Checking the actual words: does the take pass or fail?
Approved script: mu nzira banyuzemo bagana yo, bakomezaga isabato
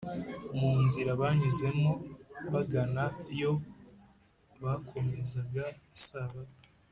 pass